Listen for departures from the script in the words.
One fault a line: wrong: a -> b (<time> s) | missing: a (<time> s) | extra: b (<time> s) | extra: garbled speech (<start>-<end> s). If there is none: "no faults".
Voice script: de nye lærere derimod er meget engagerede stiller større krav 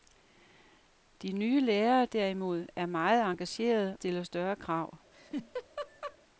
no faults